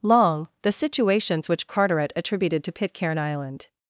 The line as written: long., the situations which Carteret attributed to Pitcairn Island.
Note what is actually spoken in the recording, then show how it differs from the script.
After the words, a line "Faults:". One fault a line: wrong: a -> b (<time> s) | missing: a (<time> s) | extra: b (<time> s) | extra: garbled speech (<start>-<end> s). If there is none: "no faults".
long., the situations which Carteret attributed to Pitcairn Island.
Faults:
no faults